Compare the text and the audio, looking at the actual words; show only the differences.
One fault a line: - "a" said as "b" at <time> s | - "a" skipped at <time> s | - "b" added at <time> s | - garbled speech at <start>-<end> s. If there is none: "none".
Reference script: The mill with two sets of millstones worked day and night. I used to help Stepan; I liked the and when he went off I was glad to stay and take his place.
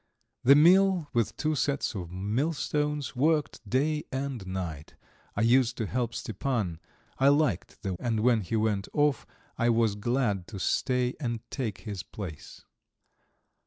none